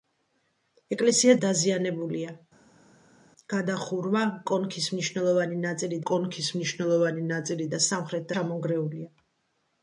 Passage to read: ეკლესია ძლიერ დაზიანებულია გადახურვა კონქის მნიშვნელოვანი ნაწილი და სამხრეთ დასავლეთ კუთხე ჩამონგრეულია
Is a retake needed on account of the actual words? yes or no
yes